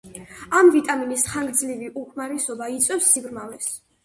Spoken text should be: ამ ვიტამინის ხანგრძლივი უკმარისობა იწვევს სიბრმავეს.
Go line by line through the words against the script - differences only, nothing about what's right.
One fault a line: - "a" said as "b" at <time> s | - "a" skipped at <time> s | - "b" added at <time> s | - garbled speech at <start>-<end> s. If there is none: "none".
none